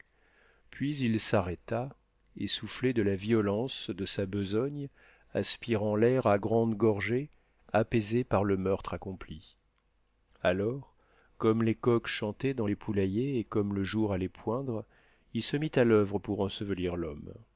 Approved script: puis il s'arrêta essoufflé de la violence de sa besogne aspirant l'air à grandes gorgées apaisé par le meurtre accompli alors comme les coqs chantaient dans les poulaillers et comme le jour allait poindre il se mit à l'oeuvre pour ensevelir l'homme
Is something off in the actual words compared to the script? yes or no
no